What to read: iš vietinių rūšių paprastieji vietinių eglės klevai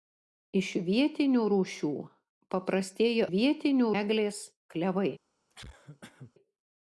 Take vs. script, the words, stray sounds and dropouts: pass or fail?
fail